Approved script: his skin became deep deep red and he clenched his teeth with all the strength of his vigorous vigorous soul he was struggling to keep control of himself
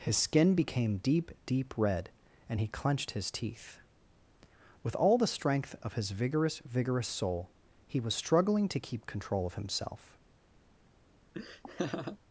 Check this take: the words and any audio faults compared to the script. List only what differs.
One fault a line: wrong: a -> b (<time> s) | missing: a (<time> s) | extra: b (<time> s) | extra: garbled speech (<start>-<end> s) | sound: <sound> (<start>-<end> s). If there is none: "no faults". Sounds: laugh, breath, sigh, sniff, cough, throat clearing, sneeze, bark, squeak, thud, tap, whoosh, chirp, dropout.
sound: laugh (11.3-12.2 s)